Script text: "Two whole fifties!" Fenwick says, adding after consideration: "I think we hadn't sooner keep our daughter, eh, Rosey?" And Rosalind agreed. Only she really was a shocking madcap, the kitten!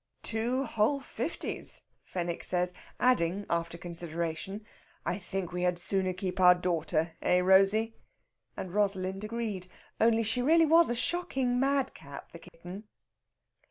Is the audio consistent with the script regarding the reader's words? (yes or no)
no